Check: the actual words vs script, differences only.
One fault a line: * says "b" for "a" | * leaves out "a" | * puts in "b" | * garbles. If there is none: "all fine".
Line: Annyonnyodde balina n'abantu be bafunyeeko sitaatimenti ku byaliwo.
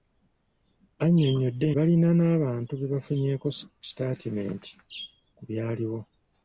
all fine